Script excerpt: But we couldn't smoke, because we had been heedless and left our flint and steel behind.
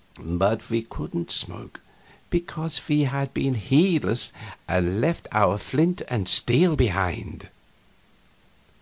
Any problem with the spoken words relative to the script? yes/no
no